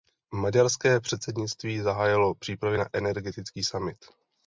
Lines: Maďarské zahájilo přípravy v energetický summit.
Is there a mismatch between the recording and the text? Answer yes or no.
yes